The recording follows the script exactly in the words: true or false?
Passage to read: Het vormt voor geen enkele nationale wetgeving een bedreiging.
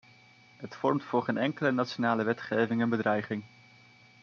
true